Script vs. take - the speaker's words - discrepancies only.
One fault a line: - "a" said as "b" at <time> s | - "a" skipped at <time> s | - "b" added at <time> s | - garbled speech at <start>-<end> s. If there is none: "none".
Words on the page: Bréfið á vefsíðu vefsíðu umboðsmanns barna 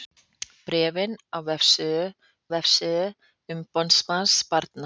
none